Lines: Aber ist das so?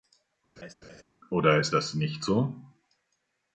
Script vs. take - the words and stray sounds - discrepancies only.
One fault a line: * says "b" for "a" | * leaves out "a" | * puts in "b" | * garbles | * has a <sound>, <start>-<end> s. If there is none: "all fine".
* has a laugh, 0.6-1.0 s
* says "Oder" for "Aber"
* puts in "nicht"